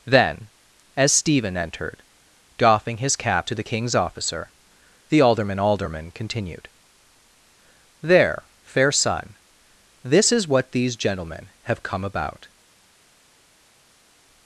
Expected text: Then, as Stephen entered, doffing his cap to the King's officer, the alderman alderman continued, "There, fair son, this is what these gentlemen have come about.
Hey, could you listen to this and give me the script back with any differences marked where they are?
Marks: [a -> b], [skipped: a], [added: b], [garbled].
Then, as Stephen entered, doffing his cap to the King's officer, the alderman alderman continued, "There, fair son, this is what these gentlemen have come about.